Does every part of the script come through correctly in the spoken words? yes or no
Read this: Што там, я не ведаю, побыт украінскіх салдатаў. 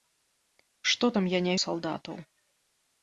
no